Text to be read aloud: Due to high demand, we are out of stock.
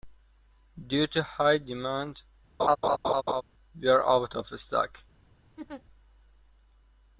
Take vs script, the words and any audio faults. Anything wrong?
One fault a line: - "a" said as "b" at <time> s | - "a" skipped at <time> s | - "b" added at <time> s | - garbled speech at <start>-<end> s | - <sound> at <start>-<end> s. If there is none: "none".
- laugh at 2.6-3.4 s
- laugh at 5.6-5.8 s